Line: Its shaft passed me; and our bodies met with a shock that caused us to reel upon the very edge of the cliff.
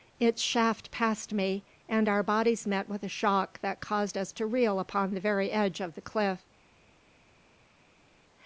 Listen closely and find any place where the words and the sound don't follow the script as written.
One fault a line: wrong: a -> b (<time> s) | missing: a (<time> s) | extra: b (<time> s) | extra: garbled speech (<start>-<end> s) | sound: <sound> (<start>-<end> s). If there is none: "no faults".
no faults